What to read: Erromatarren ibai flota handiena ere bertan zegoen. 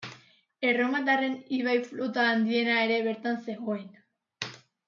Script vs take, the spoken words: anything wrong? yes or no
no